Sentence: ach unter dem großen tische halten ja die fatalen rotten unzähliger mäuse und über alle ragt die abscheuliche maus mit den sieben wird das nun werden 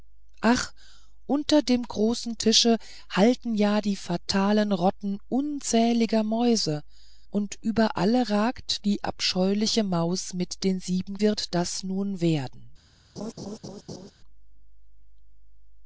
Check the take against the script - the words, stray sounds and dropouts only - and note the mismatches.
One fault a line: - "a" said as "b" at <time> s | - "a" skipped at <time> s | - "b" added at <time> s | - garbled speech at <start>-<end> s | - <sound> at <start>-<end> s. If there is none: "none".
- laugh at 13.2-14.1 s